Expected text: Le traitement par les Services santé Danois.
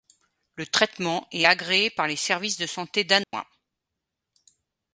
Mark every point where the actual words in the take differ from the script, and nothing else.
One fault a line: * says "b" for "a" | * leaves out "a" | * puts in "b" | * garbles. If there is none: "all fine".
* puts in "est agréé"
* puts in "de"